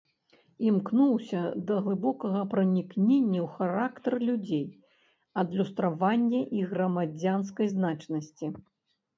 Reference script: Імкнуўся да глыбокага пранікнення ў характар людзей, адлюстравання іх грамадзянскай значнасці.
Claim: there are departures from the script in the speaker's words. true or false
false